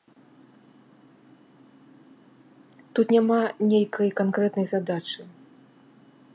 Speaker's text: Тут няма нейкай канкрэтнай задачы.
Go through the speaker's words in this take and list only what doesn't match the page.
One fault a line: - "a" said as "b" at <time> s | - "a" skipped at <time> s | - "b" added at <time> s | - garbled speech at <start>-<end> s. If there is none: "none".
none